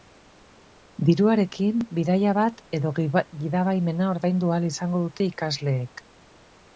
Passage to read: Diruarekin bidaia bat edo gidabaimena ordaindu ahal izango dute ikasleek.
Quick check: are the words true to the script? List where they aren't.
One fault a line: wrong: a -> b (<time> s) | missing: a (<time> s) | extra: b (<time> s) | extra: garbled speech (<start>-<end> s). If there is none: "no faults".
no faults